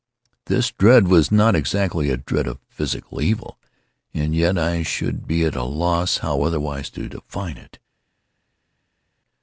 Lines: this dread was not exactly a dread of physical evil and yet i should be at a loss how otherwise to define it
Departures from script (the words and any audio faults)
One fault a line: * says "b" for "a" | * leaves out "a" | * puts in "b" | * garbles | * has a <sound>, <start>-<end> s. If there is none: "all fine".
all fine